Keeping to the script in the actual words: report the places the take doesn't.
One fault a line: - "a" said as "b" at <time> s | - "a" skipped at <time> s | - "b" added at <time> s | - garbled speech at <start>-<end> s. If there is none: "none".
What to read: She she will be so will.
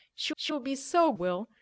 none